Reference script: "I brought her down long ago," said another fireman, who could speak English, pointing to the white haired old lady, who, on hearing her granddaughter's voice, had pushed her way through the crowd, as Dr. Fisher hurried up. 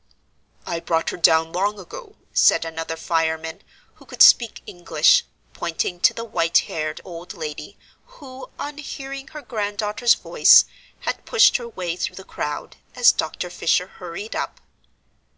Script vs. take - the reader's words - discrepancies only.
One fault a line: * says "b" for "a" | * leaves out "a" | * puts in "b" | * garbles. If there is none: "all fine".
all fine